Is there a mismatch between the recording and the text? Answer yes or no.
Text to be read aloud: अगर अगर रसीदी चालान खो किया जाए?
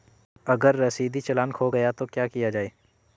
yes